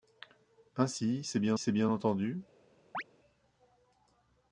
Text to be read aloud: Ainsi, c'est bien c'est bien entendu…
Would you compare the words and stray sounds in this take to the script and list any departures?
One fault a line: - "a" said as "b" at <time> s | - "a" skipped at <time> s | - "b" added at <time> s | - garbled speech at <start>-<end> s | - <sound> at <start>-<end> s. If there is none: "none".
- chirp at 2.9-3.0 s